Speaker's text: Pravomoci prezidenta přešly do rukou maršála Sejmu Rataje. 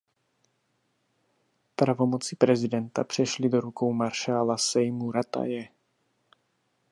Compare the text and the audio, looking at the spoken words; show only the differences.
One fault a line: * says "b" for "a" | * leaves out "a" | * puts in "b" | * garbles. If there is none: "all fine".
all fine